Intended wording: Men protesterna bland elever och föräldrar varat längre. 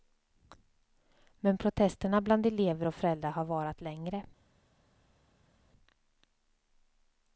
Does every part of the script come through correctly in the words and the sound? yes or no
no